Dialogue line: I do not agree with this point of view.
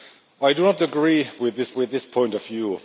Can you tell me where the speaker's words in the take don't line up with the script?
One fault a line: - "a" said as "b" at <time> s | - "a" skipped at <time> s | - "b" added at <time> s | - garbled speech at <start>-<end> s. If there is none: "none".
- "with this" added at 1.7 s